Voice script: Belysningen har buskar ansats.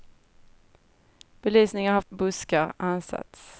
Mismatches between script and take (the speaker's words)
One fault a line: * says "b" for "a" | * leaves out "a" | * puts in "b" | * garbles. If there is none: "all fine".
all fine